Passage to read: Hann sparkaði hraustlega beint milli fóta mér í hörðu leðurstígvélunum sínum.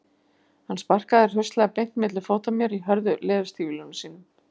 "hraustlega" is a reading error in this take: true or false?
false